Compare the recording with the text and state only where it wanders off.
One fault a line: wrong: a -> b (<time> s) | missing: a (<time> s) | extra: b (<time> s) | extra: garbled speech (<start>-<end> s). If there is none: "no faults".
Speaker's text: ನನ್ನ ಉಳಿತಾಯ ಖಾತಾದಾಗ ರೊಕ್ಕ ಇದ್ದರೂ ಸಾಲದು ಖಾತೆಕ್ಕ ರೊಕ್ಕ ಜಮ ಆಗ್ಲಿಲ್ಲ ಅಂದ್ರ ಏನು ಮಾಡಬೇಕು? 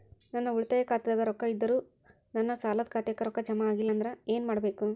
extra: ನನ್ನ (2.4 s)